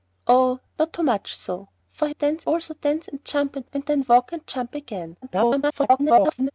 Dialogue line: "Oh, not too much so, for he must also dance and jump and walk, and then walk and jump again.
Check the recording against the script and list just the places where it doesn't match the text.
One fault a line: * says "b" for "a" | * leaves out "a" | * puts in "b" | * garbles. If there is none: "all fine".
* says "dance" for "must"
* leaves out "walk"
* garbles